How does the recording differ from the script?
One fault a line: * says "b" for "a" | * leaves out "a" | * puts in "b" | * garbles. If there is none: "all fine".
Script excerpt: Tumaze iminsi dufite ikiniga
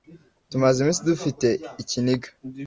all fine